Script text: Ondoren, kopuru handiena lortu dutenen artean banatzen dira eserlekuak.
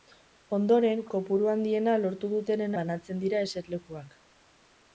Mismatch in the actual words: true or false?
true